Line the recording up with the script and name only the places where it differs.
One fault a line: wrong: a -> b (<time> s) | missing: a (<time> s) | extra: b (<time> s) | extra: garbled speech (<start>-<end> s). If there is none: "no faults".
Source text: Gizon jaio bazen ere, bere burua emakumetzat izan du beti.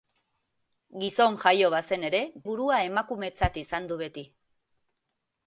missing: bere (2.2 s)